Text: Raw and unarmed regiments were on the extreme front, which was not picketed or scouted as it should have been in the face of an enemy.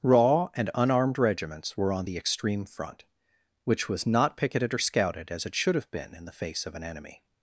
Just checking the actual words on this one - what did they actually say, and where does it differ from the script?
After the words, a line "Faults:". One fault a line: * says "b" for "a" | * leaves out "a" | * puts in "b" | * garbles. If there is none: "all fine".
Raw and unarmed regiments were on the extreme front, which was not picketed or scouted as it should have been in the face of an enemy.
Faults:
all fine